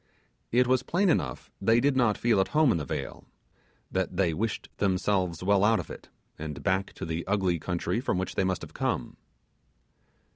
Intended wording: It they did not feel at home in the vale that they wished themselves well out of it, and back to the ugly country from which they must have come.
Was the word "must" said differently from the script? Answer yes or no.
no